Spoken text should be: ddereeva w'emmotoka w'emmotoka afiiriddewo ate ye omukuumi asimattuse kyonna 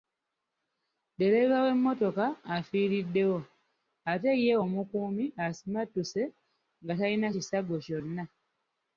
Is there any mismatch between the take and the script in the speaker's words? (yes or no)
yes